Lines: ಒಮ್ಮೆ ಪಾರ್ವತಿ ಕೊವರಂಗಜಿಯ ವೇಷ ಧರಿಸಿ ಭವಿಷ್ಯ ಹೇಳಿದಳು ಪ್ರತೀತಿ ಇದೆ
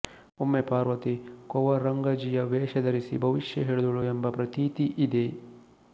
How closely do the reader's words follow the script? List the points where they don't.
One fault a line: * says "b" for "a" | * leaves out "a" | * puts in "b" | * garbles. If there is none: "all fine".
* puts in "ಎಂಬ"